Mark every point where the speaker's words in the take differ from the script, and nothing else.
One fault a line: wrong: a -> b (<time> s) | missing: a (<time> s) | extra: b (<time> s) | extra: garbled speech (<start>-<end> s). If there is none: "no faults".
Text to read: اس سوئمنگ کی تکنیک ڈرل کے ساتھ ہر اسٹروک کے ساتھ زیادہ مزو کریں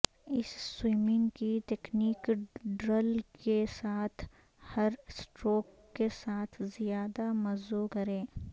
no faults